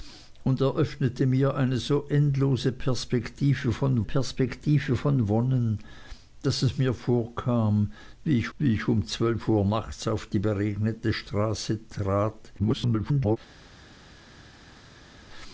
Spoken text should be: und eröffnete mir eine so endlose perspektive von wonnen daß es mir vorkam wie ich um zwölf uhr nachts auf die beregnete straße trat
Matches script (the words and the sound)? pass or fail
fail